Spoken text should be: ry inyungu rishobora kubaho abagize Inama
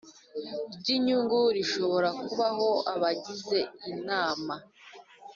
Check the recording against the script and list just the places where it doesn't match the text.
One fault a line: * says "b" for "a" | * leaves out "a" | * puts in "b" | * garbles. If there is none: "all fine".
all fine